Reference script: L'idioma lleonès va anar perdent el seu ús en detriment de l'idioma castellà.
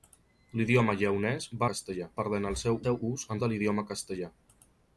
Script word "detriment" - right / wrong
wrong